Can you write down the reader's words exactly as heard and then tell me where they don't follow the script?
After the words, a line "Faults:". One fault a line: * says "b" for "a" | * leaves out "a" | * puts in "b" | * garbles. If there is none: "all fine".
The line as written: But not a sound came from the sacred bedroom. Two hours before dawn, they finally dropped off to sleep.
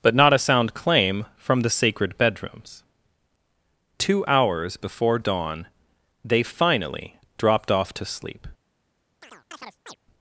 But not a sound claim from the sacred bedrooms. Two hours before dawn, they finally dropped off to sleep.
Faults:
* says "claim" for "came"
* says "bedrooms" for "bedroom"